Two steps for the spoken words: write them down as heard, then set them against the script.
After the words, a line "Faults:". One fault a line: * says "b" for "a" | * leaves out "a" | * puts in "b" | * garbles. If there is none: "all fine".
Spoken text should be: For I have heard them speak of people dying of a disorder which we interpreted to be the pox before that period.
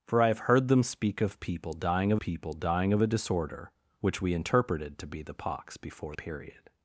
For I have heard them speak of people dying of people dying of a disorder which we interpreted to be the pox before period.
Faults:
* puts in "people dying of"
* leaves out "that"